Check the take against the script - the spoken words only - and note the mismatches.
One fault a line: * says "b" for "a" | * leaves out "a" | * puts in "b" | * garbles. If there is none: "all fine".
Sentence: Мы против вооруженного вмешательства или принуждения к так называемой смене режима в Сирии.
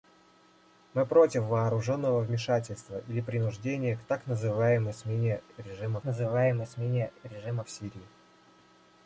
* puts in "называемой смене режима"